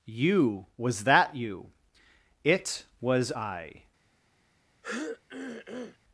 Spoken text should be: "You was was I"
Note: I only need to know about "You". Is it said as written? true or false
true